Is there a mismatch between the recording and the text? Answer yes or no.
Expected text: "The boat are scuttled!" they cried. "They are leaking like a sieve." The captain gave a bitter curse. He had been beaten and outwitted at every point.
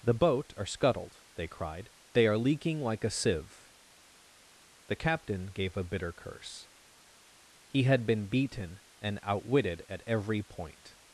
no